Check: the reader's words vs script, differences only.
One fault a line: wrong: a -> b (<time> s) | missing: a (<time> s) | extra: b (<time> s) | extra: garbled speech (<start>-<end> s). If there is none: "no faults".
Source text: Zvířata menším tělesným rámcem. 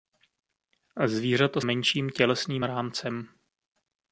no faults